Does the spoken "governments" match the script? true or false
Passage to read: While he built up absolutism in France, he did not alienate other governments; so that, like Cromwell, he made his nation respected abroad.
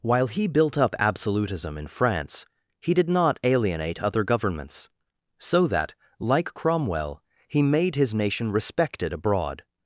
true